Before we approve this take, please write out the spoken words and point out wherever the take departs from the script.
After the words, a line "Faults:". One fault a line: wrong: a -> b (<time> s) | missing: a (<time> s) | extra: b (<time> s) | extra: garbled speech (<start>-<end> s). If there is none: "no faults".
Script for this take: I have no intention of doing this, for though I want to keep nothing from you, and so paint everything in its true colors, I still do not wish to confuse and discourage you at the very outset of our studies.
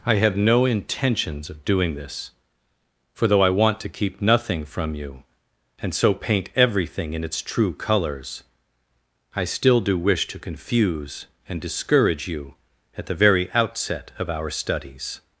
I have no intentions of doing this, for though I want to keep nothing from you, and so paint everything in its true colors, I still do wish to confuse and discourage you at the very outset of our studies.
Faults:
wrong: intention -> intentions (0.7 s)
missing: not (10.0 s)